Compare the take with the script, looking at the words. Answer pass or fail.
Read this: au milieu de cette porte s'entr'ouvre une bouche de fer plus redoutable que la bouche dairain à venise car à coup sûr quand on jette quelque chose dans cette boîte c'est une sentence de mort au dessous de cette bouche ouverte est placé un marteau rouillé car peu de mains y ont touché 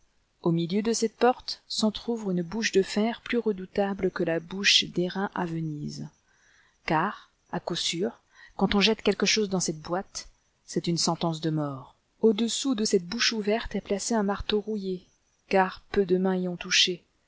pass